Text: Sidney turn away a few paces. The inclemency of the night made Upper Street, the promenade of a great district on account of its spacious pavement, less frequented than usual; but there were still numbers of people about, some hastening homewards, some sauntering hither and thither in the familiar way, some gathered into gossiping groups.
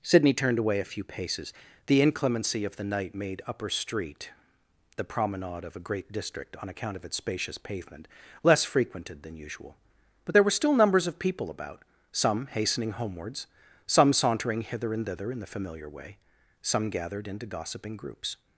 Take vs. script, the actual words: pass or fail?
fail